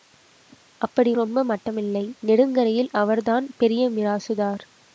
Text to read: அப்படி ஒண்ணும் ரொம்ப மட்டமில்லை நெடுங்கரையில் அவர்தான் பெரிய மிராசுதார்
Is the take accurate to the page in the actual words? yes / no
no